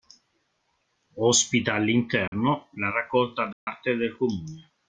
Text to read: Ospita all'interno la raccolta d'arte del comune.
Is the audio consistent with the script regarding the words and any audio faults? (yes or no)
no